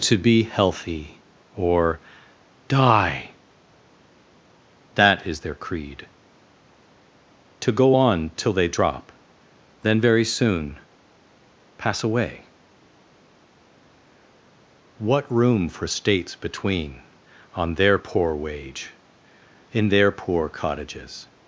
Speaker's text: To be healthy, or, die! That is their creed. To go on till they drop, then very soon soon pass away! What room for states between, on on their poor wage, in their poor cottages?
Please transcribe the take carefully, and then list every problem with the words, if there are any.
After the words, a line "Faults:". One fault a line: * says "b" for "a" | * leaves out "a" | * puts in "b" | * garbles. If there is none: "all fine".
To be healthy, or, die! That is their creed. To go on till they drop, then very soon pass away! What room for states between, on their poor wage, in their poor cottages?
Faults:
* leaves out "soon"
* leaves out "on"